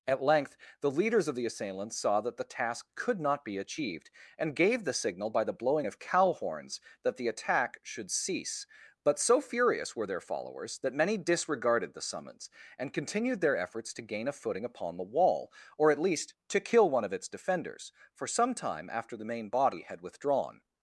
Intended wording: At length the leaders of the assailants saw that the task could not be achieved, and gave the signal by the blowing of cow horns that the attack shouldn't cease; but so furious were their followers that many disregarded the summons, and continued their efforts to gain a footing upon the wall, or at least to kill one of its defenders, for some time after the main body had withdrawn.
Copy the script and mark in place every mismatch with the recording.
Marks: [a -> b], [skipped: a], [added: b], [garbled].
At length the leaders of the assailants saw that the task could not be achieved, and gave the signal by the blowing of cow horns that the attack [shouldn't -> should] cease; but so furious were their followers that many disregarded the summons, and continued their efforts to gain a footing upon the wall, or at least to kill one of its defenders, for some time after the main body had withdrawn.